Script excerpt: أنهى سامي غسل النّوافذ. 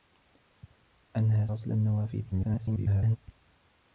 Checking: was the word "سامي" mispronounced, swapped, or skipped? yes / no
yes